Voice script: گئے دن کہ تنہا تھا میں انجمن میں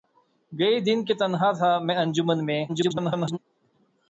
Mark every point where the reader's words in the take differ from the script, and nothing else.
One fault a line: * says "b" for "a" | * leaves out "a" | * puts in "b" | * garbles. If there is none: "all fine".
* garbles